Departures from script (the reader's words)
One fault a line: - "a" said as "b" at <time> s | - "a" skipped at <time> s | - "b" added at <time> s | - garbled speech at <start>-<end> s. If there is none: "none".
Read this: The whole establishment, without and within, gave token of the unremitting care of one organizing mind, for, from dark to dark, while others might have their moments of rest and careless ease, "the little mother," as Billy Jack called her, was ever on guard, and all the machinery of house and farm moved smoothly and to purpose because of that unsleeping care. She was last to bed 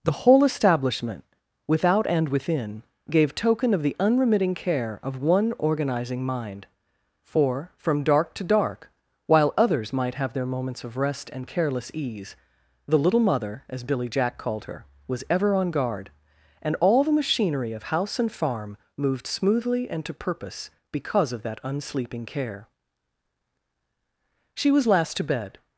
none